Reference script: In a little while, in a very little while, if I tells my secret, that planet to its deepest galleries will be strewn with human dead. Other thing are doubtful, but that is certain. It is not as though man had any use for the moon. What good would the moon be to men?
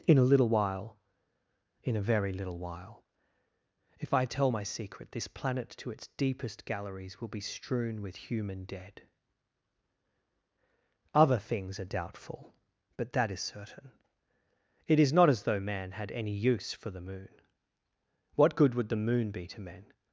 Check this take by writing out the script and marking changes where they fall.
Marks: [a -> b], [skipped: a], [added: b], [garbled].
In a little while, in a very little while, if I [tells -> tell] my secret, [that -> this] planet to its deepest galleries will be strewn with human dead. Other [thing -> things] are doubtful, but that is certain. It is not as though man had any use for the moon. What good would the moon be to men?